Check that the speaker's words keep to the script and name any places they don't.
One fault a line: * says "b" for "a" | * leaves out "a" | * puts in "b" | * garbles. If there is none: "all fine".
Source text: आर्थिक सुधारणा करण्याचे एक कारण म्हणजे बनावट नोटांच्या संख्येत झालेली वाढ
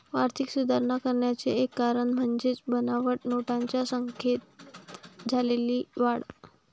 all fine